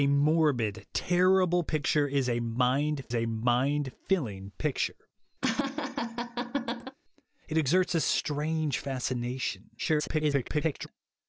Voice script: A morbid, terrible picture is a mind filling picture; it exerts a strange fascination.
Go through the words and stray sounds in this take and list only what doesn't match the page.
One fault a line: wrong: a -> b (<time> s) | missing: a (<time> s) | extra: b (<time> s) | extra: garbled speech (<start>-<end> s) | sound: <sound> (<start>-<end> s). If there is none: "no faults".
extra: a mind (3.1 s)
sound: laugh (5.4-7.0 s)
extra: garbled speech (9.8-10.9 s)